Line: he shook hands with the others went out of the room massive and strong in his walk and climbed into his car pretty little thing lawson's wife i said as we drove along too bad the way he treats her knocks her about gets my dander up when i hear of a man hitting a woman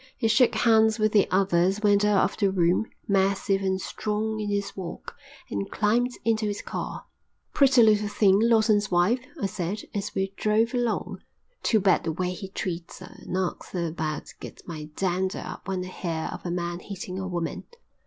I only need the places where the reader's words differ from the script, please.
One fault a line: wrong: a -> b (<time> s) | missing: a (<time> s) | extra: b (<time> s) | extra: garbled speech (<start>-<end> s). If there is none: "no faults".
no faults